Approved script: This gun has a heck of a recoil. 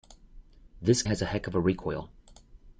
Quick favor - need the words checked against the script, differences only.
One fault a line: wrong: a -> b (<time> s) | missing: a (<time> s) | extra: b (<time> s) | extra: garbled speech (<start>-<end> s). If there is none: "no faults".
missing: gun (1.0 s)